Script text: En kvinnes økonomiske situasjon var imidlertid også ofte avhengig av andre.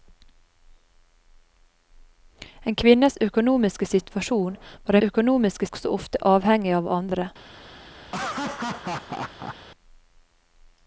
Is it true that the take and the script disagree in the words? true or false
true